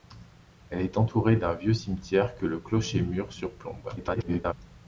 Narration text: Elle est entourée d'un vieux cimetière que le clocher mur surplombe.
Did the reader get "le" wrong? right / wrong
right